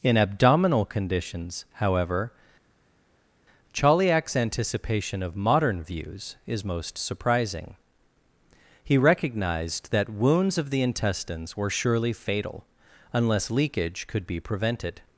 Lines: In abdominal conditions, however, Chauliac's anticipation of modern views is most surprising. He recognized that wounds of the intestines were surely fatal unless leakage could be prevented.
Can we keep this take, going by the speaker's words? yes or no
yes